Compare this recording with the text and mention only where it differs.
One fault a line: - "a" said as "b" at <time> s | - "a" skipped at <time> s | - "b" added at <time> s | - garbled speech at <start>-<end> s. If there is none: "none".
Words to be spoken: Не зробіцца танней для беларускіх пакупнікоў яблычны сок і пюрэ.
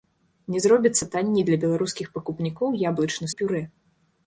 - "сок" skipped at 3.3 s